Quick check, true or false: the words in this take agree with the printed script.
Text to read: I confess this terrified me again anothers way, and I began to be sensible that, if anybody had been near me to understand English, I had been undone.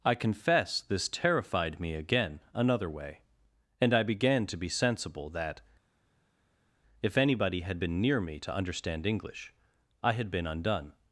false